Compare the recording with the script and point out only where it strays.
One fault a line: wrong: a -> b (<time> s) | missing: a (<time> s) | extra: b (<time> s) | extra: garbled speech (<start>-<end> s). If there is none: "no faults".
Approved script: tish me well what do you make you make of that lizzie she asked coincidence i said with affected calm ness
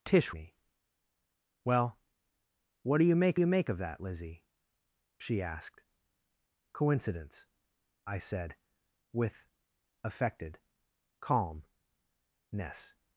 no faults